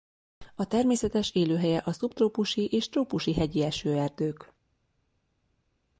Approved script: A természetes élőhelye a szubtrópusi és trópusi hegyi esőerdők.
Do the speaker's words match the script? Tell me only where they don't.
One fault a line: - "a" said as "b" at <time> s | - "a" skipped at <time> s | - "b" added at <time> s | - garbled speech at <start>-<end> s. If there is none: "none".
none